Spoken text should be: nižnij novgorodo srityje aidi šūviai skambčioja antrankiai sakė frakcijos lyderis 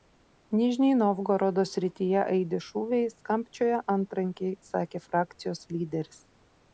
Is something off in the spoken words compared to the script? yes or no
no